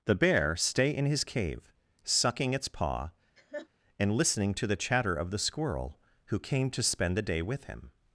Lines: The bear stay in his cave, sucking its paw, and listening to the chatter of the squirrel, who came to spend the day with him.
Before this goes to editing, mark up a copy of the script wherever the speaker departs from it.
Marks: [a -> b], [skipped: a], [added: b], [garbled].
The bear stay in his cave, sucking its paw, and listening to the chatter of the squirrel, who came to spend the day with him.